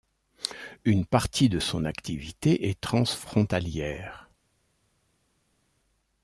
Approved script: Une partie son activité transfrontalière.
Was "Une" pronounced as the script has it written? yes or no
yes